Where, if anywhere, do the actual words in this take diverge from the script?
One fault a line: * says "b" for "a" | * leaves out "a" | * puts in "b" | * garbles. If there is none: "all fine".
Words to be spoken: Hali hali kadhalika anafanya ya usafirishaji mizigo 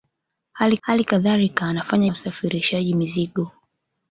all fine